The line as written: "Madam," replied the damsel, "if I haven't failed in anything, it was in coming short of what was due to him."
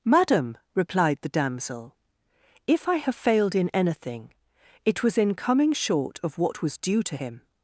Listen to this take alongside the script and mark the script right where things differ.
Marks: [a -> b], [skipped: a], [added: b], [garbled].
"Madam," replied the damsel, "if I [haven't -> have] failed in anything, it was in coming short of what was due to him."